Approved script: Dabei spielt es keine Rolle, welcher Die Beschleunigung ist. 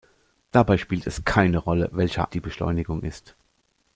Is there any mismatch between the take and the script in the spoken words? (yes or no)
no